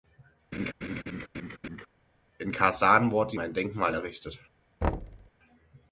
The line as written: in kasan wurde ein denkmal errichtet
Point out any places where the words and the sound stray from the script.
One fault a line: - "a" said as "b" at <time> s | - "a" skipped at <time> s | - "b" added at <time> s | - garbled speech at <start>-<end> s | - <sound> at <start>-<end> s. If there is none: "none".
- laugh at 0.5-1.9 s
- thud at 4.8-5.3 s